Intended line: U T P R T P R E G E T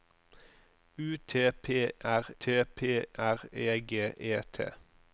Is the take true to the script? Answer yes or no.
yes